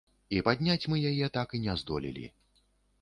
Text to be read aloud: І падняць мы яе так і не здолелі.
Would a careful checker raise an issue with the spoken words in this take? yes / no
no